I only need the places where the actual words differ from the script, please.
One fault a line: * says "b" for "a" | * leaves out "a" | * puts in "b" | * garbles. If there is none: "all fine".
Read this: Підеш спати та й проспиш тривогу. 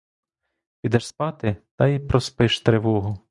all fine